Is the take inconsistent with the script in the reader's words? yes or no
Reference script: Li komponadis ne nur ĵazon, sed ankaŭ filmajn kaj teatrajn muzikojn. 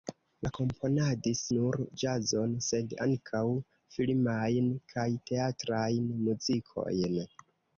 yes